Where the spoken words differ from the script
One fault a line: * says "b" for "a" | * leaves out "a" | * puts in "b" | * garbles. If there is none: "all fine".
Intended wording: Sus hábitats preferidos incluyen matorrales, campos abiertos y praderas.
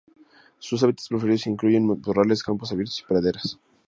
all fine